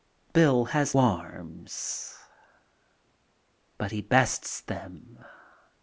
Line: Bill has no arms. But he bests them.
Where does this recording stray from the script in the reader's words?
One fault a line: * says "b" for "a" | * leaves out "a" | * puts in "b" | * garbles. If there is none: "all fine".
* leaves out "no"